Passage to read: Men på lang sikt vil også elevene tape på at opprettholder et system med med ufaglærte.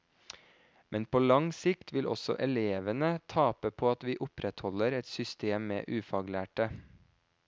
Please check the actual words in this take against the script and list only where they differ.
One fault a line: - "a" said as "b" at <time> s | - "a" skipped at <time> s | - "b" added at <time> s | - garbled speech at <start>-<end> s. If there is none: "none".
- "vi" added at 4.1 s
- "med" skipped at 5.9 s